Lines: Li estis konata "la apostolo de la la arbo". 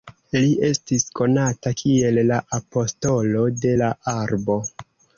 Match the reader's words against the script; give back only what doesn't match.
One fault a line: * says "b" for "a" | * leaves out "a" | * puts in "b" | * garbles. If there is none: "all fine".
* puts in "kiel"
* leaves out "la"